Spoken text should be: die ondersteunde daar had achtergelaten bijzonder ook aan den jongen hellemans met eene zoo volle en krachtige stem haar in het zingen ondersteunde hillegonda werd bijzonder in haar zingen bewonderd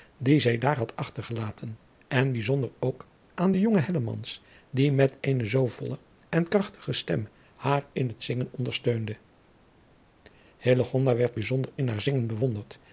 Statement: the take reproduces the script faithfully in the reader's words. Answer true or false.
false